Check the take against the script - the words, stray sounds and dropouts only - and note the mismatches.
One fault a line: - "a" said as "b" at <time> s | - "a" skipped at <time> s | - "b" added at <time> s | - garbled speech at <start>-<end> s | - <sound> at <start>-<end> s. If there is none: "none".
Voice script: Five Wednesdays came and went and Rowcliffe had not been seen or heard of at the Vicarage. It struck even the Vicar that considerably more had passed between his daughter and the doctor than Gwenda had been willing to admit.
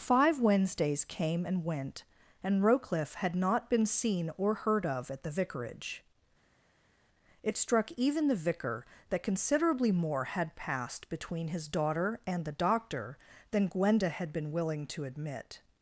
none